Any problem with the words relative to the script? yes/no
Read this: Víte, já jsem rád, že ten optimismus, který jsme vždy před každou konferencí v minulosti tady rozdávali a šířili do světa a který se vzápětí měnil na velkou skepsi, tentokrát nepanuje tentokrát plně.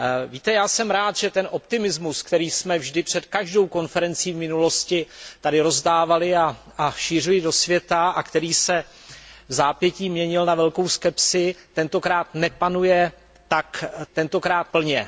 no